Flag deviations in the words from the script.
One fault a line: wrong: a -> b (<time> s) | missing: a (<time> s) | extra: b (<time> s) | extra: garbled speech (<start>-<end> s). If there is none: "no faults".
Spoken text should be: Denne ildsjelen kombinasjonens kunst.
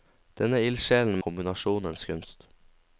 no faults